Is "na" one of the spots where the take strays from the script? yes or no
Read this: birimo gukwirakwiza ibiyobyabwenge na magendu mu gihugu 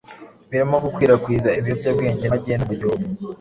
yes